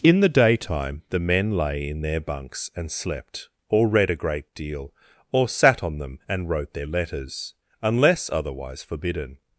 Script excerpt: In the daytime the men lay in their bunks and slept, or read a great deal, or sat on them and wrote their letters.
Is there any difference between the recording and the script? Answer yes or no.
yes